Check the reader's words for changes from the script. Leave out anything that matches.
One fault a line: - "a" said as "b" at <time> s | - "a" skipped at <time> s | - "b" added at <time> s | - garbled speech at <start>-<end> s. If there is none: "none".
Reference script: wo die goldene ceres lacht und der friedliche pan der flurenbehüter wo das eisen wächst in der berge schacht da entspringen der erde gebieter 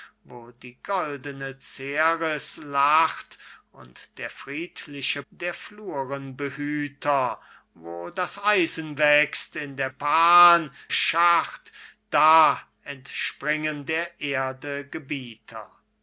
- "pan" skipped at 5.2 s
- "berge" said as "pan" at 9.9 s